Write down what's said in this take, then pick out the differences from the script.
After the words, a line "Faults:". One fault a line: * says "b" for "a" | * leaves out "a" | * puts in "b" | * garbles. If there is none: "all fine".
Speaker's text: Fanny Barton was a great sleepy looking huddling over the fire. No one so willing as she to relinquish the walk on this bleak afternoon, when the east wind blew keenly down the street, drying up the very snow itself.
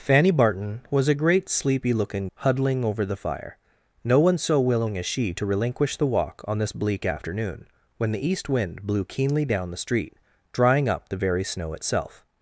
Fanny Barton was a great sleepy looking huddling over the fire. No one so willing as she to relinquish the walk on this bleak afternoon, when the east wind blew keenly down the street, drying up the very snow itself.
Faults:
all fine